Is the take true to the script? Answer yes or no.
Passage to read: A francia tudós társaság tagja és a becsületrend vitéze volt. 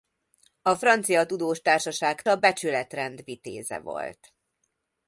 no